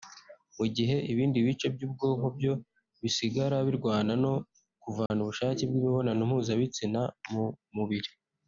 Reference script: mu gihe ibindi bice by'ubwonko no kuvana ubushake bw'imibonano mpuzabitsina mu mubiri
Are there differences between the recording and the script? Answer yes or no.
yes